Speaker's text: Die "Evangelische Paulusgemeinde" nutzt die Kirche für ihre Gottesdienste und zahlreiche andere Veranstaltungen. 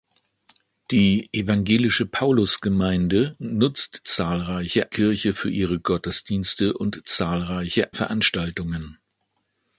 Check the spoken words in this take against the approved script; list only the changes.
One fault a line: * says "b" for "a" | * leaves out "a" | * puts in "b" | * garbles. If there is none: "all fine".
* says "zahlreiche" for "die"
* leaves out "andere"